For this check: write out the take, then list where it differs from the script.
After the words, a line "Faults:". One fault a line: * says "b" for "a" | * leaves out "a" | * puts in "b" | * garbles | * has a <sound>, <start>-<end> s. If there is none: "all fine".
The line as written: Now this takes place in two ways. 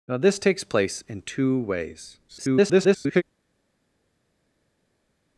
Now this takes place in two ways. [garbled]
Faults:
* garbles